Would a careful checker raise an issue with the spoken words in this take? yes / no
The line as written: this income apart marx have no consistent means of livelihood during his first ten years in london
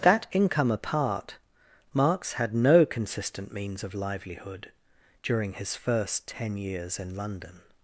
yes